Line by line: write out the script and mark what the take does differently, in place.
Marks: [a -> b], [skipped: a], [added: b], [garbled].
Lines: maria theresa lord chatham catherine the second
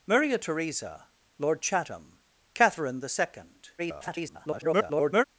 maria theresa lord chatham catherine the second [garbled]